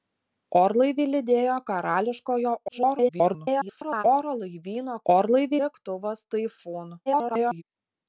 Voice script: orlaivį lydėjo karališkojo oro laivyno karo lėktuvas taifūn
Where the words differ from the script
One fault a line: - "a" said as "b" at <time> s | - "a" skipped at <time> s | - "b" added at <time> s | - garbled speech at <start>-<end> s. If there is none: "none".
- garbled speech at 2.7-4.0 s
- "karo" said as "orlaivį" at 5.1 s
- garbled speech at 7.1-7.6 s